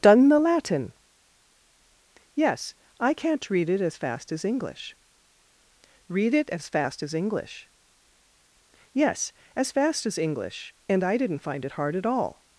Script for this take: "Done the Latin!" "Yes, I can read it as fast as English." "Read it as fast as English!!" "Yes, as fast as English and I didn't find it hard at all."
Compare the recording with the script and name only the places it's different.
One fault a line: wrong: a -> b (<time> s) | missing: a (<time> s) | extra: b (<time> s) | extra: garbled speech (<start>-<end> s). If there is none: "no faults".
wrong: can -> can't (3.1 s)